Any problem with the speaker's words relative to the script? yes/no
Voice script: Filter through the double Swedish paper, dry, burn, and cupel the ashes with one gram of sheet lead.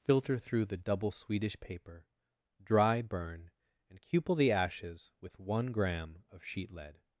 no